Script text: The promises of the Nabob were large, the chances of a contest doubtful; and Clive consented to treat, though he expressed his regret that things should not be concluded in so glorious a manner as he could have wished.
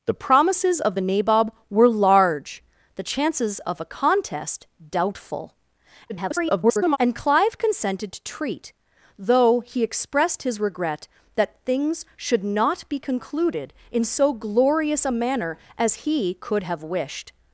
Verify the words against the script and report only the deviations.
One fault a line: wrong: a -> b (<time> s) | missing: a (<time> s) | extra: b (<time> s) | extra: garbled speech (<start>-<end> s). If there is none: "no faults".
extra: garbled speech (6.1-7.0 s)